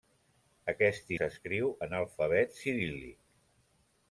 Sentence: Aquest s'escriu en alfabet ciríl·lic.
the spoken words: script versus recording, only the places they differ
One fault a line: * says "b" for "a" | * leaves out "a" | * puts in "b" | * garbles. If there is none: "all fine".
all fine